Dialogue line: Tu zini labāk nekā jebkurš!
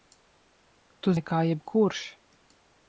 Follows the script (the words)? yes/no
no